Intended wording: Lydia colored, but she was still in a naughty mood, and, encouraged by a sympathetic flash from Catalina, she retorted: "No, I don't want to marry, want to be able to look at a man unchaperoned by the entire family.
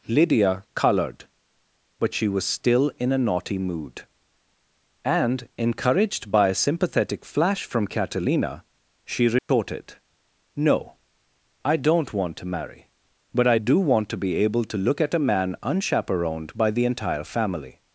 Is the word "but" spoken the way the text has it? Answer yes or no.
yes